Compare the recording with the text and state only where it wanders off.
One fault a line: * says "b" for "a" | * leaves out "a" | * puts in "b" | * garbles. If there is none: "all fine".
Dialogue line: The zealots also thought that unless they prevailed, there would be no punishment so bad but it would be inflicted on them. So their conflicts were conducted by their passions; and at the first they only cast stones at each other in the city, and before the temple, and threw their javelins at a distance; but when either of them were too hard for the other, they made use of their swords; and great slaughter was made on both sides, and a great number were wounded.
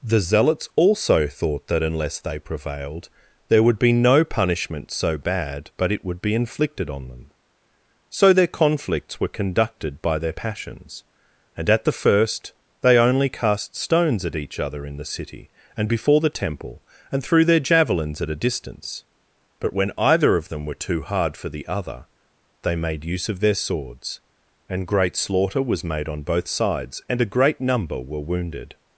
all fine